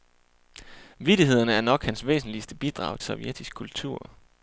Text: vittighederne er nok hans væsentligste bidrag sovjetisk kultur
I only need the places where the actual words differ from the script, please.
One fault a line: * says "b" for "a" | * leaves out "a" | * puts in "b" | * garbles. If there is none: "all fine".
all fine